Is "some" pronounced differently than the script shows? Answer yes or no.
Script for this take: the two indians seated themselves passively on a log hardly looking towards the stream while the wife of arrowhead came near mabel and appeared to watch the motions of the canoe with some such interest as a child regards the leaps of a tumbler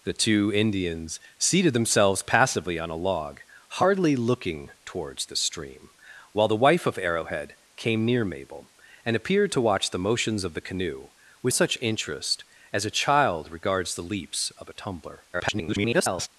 yes